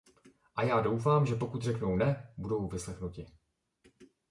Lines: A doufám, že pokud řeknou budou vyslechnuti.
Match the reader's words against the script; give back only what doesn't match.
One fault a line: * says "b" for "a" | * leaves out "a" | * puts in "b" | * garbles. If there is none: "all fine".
* puts in "já"
* puts in "ne"